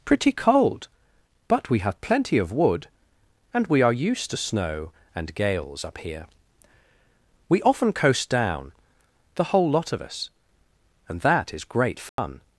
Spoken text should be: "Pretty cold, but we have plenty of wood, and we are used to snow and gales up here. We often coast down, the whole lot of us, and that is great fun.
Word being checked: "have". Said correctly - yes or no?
yes